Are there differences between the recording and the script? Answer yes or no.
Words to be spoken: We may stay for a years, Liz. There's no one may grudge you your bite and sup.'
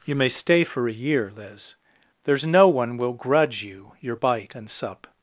yes